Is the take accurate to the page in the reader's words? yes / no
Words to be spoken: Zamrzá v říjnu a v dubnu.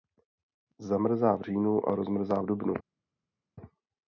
no